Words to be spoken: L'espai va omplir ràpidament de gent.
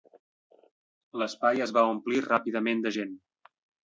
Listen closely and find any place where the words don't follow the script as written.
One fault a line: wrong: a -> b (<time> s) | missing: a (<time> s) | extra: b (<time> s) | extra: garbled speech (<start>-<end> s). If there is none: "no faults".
extra: es (1.6 s)